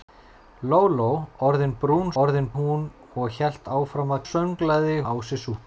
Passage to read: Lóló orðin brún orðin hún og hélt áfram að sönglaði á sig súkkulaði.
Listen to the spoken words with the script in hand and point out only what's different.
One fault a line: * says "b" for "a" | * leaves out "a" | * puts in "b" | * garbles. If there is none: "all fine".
all fine